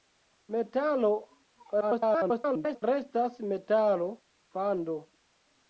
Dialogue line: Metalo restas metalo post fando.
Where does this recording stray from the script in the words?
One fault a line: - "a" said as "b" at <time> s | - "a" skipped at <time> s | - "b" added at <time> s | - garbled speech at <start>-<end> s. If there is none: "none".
- garbled speech at 1.8-2.8 s
- "post" skipped at 4.1 s